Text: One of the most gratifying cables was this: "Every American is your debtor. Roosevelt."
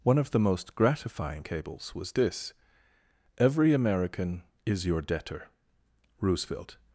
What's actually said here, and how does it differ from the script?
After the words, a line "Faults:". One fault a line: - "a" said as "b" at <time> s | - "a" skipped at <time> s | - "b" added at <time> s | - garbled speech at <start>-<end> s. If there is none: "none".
One of the most gratifying cables was this: "Every American is your debtor. Roosevelt."
Faults:
none